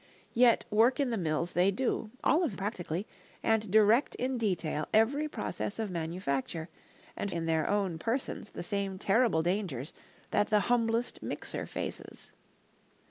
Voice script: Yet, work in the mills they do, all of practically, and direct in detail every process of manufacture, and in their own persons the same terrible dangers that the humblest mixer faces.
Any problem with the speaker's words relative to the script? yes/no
no